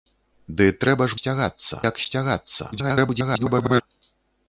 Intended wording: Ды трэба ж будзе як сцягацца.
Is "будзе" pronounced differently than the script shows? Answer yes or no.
yes